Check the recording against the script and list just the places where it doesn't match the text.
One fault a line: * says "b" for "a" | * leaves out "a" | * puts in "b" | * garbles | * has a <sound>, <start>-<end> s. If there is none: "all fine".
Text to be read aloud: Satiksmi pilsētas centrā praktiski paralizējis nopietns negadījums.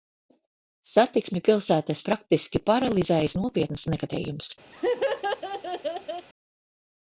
* leaves out "centrā"
* has a laugh, 4.7-6.3 s